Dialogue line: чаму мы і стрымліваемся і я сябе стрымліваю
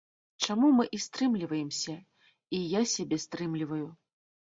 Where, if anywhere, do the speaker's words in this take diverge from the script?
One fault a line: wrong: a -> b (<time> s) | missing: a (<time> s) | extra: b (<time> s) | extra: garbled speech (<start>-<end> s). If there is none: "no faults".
no faults